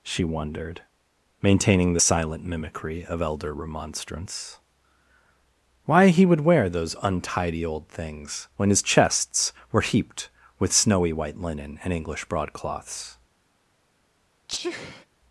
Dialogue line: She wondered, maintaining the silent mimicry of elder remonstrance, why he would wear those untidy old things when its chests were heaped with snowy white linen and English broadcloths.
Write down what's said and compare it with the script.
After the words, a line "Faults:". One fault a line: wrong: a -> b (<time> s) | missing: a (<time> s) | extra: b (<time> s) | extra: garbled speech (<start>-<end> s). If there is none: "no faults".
She wondered, maintaining the silent mimicry of elder remonstrance, why he would wear those untidy old things when his chests were heaped with snowy white linen and English broadcloths.
Faults:
wrong: its -> his (8.7 s)